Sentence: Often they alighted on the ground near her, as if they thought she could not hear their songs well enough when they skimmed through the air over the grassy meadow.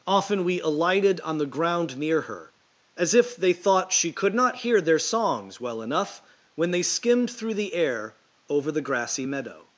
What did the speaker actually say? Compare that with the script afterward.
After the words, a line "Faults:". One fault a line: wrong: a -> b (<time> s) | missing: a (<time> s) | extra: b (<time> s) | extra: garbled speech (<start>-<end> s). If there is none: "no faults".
Often we alighted on the ground near her, as if they thought she could not hear their songs well enough when they skimmed through the air over the grassy meadow.
Faults:
wrong: they -> we (0.4 s)